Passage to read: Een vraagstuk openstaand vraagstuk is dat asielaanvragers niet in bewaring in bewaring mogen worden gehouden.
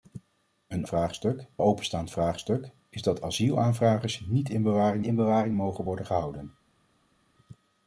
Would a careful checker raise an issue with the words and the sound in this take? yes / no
no